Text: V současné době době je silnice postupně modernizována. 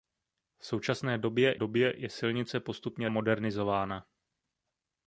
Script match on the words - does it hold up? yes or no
yes